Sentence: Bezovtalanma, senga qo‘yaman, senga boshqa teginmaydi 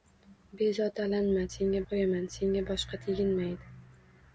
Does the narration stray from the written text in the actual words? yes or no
no